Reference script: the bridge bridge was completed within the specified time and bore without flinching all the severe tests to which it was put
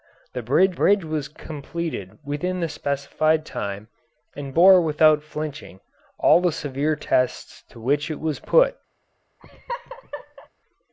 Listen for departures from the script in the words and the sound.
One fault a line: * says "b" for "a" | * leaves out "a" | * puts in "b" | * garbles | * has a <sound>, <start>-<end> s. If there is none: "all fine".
* has a laugh, 9.4-10.5 s